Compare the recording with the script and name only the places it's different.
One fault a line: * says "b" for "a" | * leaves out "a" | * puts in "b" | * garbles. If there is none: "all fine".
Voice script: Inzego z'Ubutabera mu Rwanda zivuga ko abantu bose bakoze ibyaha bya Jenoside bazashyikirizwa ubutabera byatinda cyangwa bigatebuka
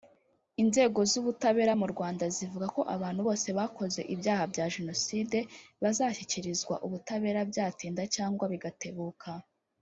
all fine